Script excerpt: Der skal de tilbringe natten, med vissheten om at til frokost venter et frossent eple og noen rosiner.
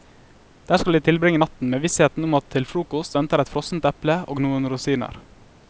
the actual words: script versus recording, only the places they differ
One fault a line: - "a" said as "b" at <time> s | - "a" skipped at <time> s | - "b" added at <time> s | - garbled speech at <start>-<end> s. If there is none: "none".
none